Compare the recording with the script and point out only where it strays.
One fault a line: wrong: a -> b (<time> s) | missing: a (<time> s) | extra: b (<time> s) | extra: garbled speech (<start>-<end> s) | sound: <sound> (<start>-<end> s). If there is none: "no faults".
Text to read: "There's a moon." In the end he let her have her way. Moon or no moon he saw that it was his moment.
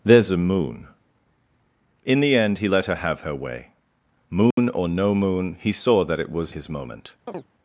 sound: dropout (4.5-4.6 s)
sound: chirp (7.3-7.5 s)